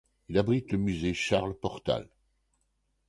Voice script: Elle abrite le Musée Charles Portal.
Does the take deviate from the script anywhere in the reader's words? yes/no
yes